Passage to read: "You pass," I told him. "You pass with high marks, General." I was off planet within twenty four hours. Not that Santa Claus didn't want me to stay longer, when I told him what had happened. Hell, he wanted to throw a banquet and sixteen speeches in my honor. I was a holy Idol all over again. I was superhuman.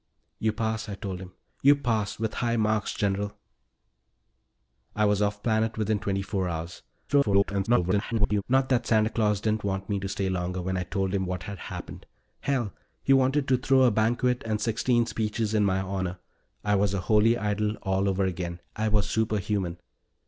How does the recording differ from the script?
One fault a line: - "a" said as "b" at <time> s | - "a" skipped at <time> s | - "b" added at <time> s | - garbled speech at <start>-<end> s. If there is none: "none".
- garbled speech at 7.1-8.4 s